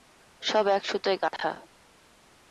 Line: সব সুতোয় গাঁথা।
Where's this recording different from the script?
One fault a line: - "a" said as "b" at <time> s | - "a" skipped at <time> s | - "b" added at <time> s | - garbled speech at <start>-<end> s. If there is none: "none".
- "এক" added at 0.7 s